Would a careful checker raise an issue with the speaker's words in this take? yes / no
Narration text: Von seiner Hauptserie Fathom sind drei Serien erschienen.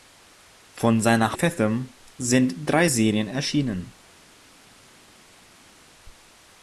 yes